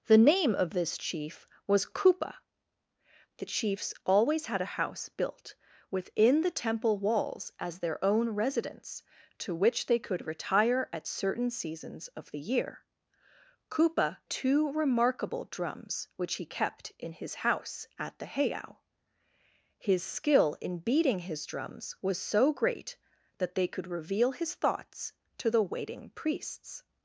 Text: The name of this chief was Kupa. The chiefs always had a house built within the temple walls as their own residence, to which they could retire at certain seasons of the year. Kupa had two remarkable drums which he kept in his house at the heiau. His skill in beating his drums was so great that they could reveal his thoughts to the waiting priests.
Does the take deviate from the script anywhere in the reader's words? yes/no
yes